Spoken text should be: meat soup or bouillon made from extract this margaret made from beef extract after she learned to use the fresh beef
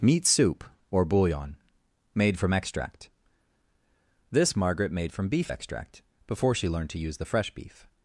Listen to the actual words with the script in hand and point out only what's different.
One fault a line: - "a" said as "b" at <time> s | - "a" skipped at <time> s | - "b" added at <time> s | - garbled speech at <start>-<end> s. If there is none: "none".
- "after" said as "before" at 6.3 s